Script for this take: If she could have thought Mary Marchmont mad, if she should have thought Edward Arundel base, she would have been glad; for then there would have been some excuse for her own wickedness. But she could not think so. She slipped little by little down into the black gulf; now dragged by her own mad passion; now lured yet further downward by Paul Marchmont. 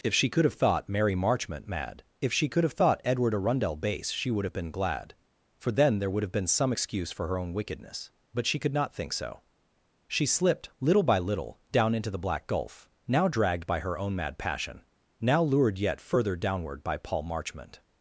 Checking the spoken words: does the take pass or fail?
fail